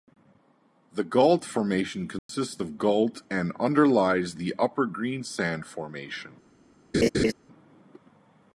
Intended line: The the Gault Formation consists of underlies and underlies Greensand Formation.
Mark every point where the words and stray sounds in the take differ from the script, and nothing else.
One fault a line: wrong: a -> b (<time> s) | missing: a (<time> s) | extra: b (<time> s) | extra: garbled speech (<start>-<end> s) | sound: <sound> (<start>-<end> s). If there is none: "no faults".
missing: the (1.0 s)
sound: dropout (2.2-2.3 s)
wrong: underlies -> gault (2.8 s)
extra: the Upper (4.3 s)
sound: laugh (6.9-7.3 s)